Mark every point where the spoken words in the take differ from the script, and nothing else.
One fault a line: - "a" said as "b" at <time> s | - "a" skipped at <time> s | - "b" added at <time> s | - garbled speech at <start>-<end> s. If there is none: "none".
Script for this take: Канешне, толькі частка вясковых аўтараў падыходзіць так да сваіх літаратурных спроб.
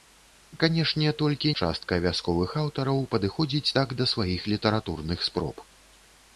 none